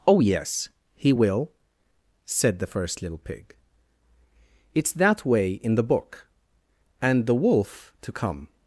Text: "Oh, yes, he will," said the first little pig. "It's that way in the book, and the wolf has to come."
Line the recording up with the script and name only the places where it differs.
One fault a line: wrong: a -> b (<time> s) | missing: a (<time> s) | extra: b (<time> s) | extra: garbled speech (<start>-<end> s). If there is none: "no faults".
missing: has (7.9 s)